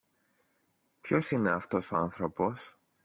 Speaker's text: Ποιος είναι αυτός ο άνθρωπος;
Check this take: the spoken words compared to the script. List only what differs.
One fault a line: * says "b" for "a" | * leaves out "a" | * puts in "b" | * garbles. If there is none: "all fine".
all fine